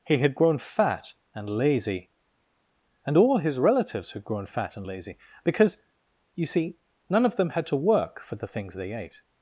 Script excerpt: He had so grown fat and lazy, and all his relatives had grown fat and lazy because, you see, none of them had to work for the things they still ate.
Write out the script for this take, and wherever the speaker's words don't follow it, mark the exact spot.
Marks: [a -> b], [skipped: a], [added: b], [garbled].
He had [skipped: so] grown fat and lazy, and all his relatives had grown fat and lazy because, you see, none of them had to work for the things they [skipped: still] ate.